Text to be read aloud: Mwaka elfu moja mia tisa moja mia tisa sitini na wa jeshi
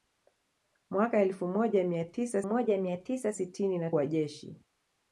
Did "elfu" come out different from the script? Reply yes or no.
no